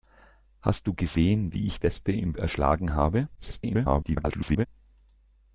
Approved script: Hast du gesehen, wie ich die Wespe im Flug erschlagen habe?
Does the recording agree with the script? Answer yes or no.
no